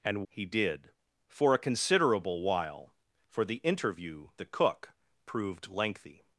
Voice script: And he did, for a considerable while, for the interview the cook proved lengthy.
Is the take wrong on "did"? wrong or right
right